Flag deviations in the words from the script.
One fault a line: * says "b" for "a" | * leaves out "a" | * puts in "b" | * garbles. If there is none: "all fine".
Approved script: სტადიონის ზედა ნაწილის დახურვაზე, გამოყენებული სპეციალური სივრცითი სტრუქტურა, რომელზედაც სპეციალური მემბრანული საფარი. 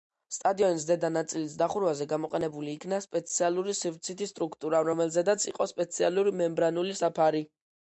* puts in "იქნა"
* puts in "იყო"